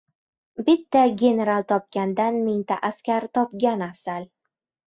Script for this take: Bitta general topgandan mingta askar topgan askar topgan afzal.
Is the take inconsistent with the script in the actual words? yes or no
yes